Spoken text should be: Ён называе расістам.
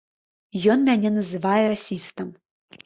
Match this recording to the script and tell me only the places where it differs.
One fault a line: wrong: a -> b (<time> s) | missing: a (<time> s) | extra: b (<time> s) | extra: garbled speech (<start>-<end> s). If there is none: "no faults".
extra: мяне (0.9 s)